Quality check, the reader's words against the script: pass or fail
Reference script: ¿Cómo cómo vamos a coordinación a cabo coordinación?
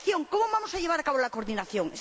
fail